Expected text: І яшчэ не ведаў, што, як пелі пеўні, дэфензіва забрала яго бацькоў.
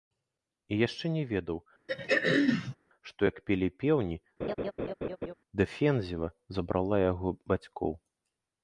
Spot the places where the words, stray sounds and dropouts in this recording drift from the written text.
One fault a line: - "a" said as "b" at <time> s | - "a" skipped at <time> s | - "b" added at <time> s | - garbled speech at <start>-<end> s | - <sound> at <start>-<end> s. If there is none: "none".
- throat clearing at 1.9-2.8 s
- laugh at 4.4-5.3 s